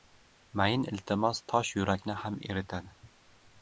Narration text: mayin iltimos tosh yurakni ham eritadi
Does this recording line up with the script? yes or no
yes